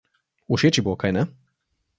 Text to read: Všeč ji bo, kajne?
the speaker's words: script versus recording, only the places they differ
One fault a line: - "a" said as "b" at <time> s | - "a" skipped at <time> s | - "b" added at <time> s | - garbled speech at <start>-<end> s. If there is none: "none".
none